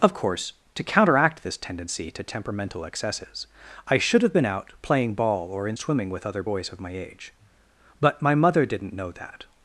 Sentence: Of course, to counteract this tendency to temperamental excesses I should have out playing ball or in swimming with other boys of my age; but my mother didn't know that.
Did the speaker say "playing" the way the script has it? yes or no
yes